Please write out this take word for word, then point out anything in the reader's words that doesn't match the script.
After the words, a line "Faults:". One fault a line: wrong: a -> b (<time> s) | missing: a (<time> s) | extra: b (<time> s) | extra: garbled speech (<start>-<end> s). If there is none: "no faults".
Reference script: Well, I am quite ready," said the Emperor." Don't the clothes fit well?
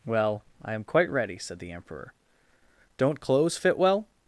Well, I am quite ready," said the Emperor." Don't clothes fit well?
Faults:
missing: the (3.2 s)